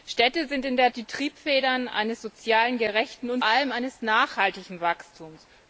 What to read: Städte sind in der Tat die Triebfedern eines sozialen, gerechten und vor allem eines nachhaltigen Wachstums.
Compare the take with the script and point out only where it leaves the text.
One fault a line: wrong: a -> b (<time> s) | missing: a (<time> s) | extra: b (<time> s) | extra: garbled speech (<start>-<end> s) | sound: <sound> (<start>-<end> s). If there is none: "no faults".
missing: Tat (0.9 s)
missing: vor (3.4 s)